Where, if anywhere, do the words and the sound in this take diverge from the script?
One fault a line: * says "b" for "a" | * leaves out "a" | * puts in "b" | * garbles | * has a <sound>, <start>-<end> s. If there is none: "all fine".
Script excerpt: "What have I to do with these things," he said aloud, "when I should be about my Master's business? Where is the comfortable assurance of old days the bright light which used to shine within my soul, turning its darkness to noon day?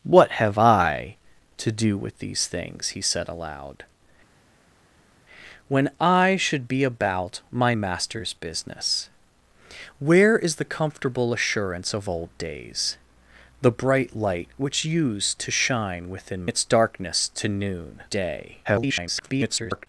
* leaves out "my soul turning"
* garbles